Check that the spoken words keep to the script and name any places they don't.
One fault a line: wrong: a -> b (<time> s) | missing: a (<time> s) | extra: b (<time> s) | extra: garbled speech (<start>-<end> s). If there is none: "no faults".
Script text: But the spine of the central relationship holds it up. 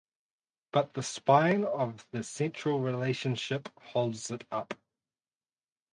no faults